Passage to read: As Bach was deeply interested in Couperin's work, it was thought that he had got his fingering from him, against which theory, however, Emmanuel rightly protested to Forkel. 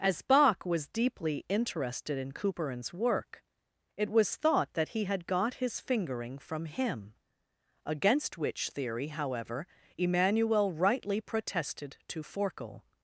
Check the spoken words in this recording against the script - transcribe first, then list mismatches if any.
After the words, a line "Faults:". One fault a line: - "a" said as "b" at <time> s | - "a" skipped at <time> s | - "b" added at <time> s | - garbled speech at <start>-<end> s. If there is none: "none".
As Bach was deeply interested in Couperin's work, it was thought that he had got his fingering from him, against which theory, however, Emmanuel rightly protested to Forkel.
Faults:
none